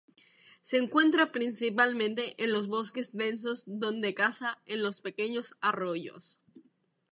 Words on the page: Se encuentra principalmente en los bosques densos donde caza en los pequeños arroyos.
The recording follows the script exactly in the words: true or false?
true